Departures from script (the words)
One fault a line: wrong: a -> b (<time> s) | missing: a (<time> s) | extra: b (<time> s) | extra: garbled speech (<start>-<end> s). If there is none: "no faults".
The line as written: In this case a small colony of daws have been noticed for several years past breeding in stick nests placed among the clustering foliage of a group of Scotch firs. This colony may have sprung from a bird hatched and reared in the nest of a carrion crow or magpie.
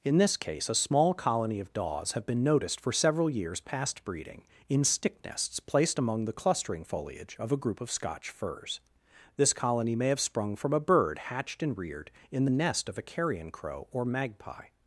no faults